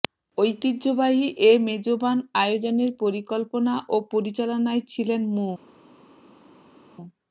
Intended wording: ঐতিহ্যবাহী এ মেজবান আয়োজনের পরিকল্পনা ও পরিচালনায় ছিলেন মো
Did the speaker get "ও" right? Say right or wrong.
right